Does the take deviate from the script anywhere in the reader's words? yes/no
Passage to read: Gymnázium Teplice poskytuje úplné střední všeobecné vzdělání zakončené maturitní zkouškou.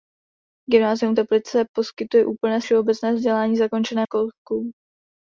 yes